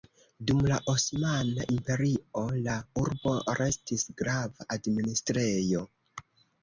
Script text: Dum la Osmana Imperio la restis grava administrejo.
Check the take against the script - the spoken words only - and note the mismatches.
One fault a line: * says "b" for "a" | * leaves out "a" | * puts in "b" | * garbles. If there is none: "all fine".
* puts in "urbo"